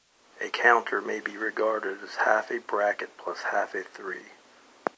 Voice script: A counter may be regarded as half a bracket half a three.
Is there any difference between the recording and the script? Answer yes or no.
yes